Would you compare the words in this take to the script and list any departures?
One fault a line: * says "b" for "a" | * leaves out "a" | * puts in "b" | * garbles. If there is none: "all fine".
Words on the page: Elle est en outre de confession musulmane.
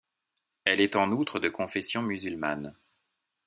all fine